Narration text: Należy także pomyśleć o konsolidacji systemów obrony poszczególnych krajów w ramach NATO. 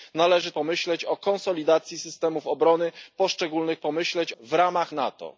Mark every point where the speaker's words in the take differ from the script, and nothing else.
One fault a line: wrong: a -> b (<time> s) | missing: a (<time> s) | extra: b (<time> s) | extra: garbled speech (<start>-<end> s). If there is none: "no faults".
missing: także (0.5 s)
wrong: krajów -> pomyśleć (3.8 s)